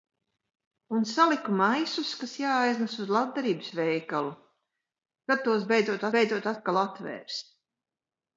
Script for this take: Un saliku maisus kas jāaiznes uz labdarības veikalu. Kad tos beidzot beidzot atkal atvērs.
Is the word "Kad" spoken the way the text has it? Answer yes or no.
yes